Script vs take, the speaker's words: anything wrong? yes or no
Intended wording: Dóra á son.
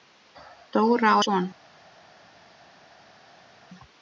no